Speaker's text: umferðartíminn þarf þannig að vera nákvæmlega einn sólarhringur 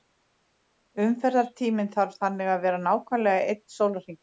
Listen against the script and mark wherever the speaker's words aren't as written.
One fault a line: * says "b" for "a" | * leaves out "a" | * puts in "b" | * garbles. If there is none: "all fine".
all fine